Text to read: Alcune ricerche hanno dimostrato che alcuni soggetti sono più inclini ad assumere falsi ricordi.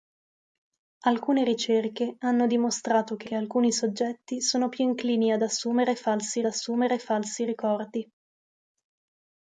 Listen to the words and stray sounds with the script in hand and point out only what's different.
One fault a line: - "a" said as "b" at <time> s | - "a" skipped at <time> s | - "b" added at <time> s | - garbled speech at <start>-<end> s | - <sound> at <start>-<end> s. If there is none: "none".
- "che" added at 3.2 s
- "assumere falsi" added at 6.5 s